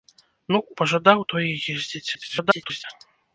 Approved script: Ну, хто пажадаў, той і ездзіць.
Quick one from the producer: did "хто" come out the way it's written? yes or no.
no